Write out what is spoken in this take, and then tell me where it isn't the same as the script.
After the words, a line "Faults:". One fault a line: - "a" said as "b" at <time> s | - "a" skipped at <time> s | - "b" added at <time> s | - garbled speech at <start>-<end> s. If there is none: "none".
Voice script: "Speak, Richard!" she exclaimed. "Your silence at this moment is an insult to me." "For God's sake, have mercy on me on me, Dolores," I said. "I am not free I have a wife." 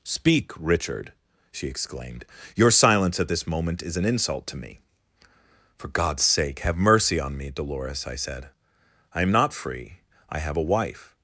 "Speak, Richard!" she exclaimed. "Your silence at this moment is an insult to me." "For God's sake, have mercy on me, Dolores," I said. "I am not free I have a wife."
Faults:
- "on me" skipped at 7.5 s